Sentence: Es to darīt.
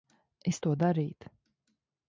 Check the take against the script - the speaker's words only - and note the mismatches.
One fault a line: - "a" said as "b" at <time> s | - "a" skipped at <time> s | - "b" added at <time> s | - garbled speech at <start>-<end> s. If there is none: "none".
none